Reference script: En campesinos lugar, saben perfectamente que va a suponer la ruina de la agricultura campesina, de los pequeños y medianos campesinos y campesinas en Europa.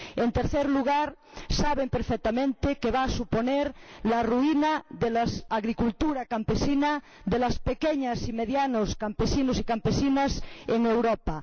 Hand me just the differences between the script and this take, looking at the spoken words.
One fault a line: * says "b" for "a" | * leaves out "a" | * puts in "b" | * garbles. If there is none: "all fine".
* says "tercer" for "campesinos"